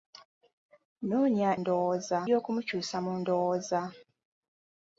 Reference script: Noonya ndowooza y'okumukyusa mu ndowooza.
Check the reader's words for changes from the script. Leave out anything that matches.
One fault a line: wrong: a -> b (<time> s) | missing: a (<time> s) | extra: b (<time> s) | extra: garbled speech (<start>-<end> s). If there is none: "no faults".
no faults